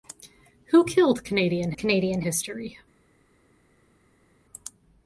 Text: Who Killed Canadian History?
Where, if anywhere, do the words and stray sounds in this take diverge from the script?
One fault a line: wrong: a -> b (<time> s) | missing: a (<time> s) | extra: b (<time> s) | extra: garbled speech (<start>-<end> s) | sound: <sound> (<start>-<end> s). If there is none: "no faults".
extra: Canadian (1.8 s)